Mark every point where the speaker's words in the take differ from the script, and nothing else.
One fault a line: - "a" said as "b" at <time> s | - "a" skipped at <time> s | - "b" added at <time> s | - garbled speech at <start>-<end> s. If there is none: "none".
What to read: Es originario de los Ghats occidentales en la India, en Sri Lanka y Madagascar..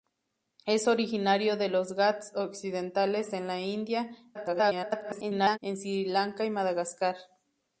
- garbled speech at 4.3-5.6 s